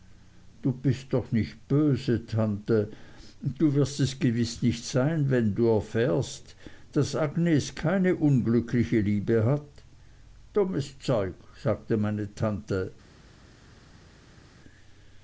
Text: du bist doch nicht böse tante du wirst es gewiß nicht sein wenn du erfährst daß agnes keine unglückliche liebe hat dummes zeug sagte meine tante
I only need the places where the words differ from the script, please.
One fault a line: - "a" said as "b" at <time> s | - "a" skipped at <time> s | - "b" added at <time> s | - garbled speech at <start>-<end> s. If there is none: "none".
none